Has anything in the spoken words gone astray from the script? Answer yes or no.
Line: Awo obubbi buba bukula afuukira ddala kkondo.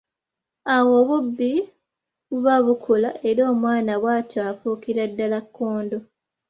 yes